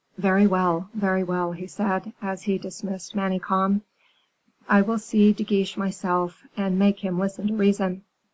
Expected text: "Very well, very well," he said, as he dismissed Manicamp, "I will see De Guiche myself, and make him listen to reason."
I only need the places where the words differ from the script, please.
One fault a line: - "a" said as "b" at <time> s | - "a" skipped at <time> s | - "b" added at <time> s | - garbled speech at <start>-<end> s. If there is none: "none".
none